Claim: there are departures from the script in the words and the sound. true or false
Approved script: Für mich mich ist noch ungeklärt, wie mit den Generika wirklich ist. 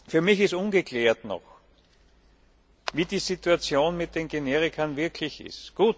true